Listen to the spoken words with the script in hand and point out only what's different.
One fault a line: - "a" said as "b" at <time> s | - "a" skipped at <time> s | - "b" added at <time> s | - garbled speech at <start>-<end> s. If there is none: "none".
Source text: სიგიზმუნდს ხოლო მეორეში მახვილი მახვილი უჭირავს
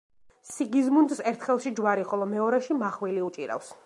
- "ერთ ხელში ჯვარი" added at 1.3 s
- "მახვილი" skipped at 3.2 s